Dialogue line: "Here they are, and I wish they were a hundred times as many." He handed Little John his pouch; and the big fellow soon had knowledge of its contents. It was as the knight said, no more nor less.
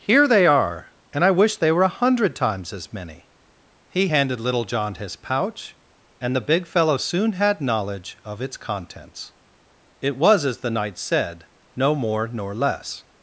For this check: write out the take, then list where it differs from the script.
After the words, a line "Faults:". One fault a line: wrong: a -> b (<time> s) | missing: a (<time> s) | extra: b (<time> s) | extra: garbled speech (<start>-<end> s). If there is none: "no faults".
"Here they are, and I wish they were a hundred times as many." He handed Little John his pouch; and the big fellow soon had knowledge of its contents. It was as the knight said, no more nor less.
Faults:
no faults